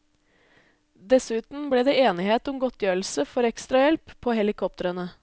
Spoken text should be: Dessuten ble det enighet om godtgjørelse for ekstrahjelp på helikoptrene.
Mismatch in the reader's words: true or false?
false